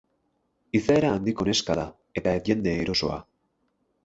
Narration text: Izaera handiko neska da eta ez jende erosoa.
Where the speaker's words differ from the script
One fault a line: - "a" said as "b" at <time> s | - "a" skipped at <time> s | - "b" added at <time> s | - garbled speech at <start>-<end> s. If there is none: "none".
none